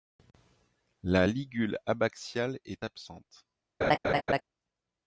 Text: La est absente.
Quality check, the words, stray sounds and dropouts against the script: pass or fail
fail